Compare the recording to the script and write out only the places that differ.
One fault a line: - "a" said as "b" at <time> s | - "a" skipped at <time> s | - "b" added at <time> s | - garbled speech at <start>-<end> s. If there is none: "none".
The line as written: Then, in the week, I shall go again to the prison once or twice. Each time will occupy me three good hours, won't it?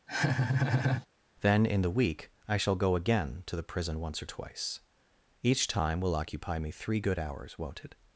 none